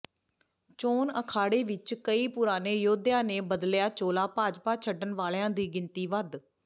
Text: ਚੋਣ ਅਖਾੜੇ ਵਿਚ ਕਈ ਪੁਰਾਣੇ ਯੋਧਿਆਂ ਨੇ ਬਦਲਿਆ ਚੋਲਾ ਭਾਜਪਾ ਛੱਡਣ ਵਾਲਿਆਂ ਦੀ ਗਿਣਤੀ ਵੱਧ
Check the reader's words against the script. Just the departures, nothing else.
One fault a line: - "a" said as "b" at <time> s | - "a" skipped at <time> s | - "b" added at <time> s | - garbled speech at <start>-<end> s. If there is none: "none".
none